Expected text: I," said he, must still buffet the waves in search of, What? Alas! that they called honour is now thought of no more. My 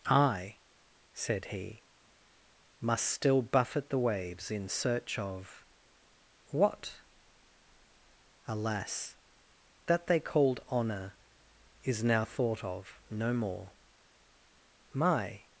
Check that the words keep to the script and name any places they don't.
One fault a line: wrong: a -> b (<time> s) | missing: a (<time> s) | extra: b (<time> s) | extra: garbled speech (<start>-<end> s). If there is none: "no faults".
no faults